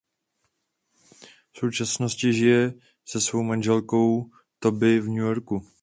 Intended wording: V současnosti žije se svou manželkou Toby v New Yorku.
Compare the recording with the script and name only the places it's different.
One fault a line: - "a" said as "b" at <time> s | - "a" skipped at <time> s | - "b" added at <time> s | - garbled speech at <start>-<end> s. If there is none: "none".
none